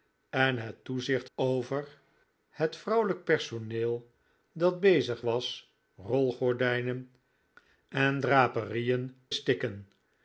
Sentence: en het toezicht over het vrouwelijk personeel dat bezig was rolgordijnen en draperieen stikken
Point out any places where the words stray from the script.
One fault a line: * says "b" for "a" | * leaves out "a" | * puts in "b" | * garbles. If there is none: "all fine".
all fine